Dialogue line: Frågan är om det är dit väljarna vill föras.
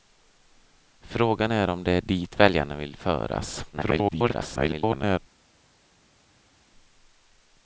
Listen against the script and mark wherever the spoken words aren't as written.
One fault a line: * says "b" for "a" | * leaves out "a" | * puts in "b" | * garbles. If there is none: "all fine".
* garbles